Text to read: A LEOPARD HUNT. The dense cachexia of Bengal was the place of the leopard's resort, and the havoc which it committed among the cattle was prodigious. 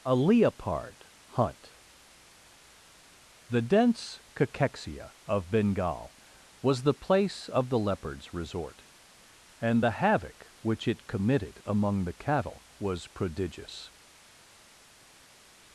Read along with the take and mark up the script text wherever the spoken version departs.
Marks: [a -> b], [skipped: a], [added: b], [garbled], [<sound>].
A LEOPARD HUNT. The dense cachexia of Bengal was the place of the leopard's resort, and the havoc which it committed among the cattle was prodigious.